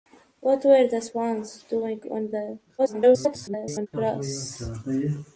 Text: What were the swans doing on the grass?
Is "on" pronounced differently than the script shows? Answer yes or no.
no